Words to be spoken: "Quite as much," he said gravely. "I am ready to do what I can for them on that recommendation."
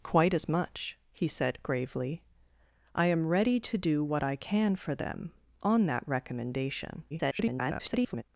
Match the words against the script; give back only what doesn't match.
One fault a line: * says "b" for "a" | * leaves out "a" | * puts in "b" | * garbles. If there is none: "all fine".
* garbles